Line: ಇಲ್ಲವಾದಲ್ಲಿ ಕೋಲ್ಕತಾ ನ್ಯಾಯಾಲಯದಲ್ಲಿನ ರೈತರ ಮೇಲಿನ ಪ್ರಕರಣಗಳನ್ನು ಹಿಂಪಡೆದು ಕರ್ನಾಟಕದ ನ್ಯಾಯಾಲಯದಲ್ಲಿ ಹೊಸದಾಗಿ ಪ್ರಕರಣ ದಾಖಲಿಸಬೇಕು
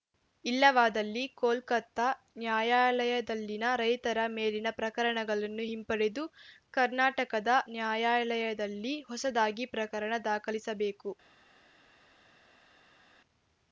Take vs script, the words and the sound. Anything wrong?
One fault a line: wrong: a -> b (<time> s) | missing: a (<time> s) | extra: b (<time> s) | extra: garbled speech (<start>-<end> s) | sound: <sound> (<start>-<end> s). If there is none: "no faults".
no faults